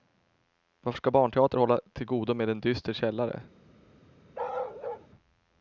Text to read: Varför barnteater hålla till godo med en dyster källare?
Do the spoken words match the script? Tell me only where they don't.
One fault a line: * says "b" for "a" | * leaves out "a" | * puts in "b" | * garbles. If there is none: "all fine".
* puts in "ska"